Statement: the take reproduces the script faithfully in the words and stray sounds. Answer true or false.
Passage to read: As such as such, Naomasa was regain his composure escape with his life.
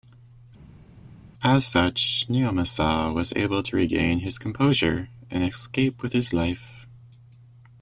false